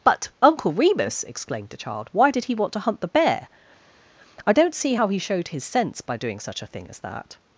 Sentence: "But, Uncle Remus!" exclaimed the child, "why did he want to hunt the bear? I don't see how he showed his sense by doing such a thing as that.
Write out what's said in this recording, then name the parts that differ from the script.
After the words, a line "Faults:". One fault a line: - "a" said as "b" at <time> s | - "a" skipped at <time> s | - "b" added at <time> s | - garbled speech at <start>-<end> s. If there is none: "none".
"But, Uncle Remus!" exclaimed the child, "why did he want to hunt the bear? I don't see how he showed his sense by doing such a thing as that.
Faults:
none